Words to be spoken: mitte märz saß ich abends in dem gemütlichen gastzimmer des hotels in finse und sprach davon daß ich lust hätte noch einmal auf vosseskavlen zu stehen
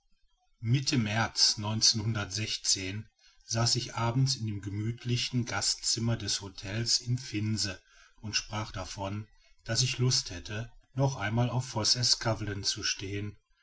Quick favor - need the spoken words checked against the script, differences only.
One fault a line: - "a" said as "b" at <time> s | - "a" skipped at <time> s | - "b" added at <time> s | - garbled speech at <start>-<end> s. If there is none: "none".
none